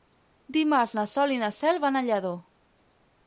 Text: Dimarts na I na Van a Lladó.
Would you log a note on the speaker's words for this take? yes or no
yes